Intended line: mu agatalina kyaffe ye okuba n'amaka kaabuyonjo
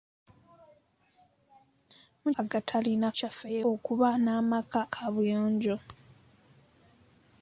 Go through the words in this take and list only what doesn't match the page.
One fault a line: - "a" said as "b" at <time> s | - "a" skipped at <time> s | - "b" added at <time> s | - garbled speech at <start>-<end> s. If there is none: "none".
none